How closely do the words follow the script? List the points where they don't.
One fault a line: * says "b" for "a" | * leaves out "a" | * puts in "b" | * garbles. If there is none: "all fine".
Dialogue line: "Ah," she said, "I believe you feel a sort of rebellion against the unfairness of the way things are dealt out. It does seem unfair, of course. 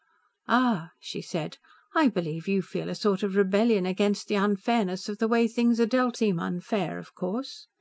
* leaves out "out It does"